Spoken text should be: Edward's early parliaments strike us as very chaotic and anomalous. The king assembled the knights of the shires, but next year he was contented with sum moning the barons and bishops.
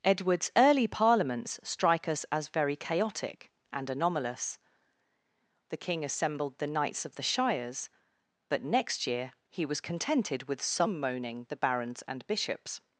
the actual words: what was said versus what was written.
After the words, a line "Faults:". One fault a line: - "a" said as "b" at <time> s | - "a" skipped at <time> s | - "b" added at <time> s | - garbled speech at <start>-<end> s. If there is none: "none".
Edward's early parliaments strike us as very chaotic and anomalous. The king assembled the knights of the shires, but next year he was contented with sum moning the barons and bishops.
Faults:
none